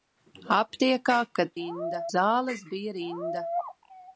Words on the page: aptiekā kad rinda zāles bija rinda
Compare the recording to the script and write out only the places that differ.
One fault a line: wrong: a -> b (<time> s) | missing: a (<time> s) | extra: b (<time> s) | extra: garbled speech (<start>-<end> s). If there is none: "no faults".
no faults